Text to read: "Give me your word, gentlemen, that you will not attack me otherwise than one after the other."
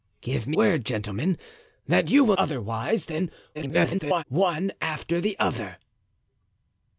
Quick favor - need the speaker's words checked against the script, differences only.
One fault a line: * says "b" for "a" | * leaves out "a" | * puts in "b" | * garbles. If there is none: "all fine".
* leaves out "your"
* leaves out "not attack me"
* garbles